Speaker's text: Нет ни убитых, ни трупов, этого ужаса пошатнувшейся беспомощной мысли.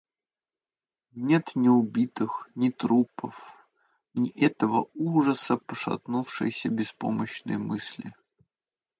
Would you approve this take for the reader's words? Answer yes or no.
no